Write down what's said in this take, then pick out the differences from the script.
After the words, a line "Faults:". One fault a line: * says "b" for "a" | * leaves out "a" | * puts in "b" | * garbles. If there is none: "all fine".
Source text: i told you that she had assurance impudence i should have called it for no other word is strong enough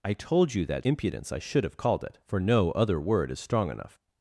i told you that impudence i should have called it for no other word is strong enough
Faults:
* leaves out "she had assurance"